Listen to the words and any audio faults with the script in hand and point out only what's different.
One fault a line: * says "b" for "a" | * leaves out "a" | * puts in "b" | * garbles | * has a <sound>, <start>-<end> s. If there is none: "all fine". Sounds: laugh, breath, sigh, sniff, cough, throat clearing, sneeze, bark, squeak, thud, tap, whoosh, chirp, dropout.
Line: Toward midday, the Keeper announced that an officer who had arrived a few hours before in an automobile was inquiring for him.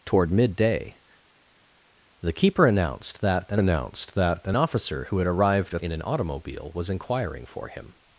* puts in "announced that an"
* leaves out "few hours before"